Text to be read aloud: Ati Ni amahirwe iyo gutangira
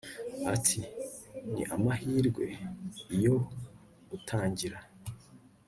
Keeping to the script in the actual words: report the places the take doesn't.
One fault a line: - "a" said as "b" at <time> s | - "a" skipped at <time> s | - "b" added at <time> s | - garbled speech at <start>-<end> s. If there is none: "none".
none